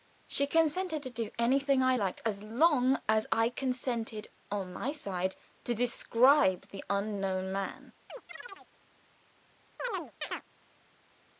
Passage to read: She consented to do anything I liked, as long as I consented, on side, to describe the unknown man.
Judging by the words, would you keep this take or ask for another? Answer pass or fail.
fail